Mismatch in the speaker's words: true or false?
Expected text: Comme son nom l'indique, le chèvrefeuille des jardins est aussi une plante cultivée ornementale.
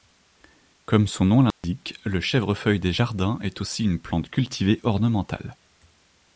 false